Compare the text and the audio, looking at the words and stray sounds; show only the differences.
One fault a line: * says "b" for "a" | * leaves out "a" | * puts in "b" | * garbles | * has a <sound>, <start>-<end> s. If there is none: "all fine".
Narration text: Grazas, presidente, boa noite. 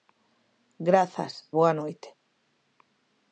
* leaves out "presidente"